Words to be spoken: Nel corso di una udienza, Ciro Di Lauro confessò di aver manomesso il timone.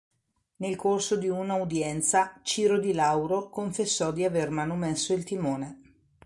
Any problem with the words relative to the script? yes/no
no